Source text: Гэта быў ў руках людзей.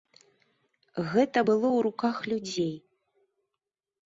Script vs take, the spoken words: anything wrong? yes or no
yes